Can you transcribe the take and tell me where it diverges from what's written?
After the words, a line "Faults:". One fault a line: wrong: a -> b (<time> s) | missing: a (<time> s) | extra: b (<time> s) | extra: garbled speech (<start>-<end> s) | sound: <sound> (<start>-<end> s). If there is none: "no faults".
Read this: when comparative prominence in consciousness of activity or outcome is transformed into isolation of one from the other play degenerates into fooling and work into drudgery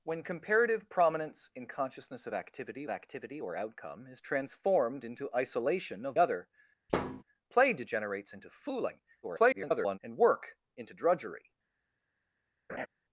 when comparative prominence in consciousness of activity activity or outcome is transformed into isolation of other play degenerates into fooling [garbled] and work into drudgery
Faults:
extra: activity (2.9 s)
missing: one from the (6.2 s)
sound: thud (6.9-7.2 s)
extra: garbled speech (9.2-10.0 s)
sound: laugh (12.7-12.9 s)